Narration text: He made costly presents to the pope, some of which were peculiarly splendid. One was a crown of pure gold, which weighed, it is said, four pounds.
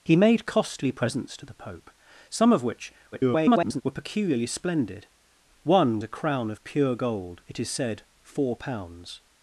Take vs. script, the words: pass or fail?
fail